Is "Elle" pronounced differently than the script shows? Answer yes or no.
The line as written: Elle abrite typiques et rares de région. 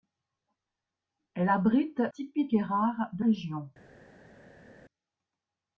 no